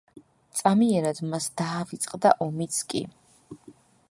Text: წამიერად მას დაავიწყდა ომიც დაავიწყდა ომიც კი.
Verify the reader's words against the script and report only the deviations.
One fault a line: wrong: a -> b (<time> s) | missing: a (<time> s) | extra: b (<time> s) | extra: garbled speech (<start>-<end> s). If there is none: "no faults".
missing: დაავიწყდა ომიც (2.8 s)